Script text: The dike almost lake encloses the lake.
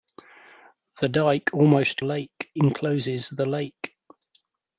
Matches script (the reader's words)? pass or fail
pass